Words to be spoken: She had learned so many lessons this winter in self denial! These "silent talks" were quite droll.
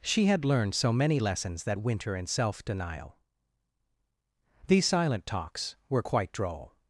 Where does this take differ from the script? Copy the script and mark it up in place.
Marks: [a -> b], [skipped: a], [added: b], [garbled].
She had learned so many lessons [this -> that] winter in self denial! These "silent talks" were quite droll.